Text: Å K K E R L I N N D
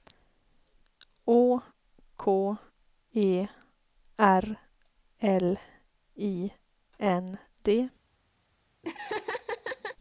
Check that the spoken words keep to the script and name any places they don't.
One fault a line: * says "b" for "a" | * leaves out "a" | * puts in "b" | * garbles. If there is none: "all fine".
* leaves out "K"
* leaves out "N"